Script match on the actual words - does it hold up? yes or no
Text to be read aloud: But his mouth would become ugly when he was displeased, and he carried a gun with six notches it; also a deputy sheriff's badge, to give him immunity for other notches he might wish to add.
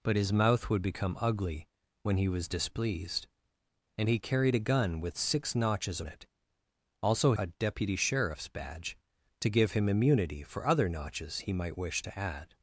yes